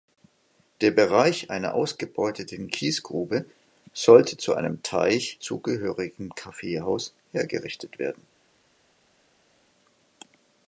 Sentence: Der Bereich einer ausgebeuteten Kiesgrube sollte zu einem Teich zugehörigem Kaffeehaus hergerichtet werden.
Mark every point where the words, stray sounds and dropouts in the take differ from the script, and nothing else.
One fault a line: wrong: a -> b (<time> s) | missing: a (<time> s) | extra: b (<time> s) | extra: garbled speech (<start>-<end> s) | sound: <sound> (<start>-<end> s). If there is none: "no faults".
no faults